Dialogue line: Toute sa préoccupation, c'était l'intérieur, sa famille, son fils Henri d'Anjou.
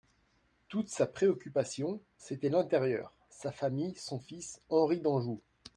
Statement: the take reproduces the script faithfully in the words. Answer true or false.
true